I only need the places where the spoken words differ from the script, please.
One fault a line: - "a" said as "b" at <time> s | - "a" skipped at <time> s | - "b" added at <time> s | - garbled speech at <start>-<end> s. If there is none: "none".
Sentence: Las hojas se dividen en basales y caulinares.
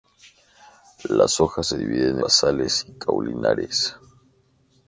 - "en" skipped at 2.2 s